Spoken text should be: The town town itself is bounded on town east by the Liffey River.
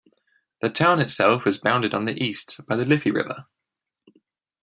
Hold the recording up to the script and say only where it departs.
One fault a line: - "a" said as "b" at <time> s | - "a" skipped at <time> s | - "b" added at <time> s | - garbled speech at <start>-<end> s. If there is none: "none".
- "town" skipped at 1.0 s
- "town" said as "the" at 2.0 s